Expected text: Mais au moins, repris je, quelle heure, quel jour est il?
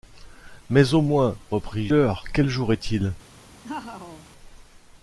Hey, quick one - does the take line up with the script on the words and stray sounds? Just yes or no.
no